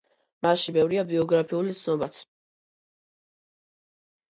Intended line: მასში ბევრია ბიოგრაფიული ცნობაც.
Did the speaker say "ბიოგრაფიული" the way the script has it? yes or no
yes